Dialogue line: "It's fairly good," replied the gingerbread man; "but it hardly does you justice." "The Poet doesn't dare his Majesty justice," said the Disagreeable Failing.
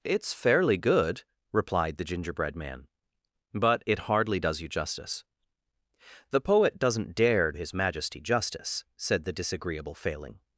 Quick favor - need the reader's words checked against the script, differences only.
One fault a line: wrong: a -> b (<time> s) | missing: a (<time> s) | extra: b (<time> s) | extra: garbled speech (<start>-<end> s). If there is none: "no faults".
no faults